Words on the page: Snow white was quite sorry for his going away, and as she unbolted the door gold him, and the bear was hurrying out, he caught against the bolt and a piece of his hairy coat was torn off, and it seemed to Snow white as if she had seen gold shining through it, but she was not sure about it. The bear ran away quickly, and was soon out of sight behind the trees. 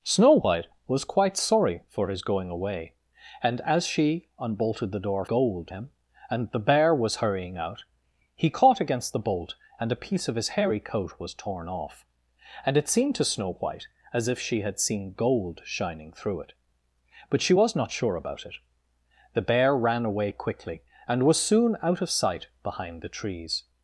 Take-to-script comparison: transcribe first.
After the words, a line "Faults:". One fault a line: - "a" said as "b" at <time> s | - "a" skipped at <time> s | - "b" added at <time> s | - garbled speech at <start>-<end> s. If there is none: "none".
Snow white was quite sorry for his going away, and as she unbolted the door gold him, and the bear was hurrying out, he caught against the bolt and a piece of his hairy coat was torn off, and it seemed to Snow white as if she had seen gold shining through it, but she was not sure about it. The bear ran away quickly, and was soon out of sight behind the trees.
Faults:
none